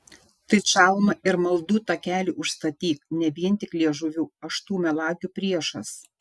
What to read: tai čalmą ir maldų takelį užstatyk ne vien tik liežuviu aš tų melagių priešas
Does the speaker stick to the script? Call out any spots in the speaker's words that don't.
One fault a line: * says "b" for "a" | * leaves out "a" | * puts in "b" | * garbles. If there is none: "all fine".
all fine